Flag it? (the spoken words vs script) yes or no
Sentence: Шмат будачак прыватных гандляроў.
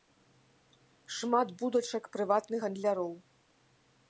no